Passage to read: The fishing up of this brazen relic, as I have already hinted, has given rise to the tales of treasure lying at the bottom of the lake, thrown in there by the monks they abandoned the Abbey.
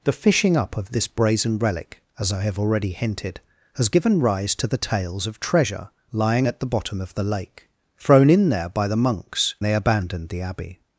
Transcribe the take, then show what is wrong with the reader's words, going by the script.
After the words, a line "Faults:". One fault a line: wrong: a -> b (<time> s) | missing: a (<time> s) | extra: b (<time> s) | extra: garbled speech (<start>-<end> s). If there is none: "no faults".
The fishing up of this brazen relic, as I have already hinted, has given rise to the tales of treasure lying at the bottom of the lake, thrown in there by the monks they abandoned the Abbey.
Faults:
no faults